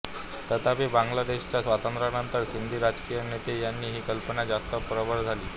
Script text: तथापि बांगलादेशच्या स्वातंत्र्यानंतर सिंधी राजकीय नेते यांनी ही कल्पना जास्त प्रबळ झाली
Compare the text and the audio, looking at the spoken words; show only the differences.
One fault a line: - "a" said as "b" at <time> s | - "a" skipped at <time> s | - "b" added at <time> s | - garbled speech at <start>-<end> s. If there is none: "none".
none